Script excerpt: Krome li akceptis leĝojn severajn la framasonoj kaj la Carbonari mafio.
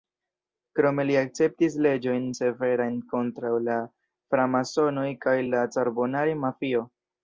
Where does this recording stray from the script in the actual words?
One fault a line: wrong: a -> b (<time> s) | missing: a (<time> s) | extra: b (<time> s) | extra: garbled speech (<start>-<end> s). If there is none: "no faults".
extra: kontraŭ (3.2 s)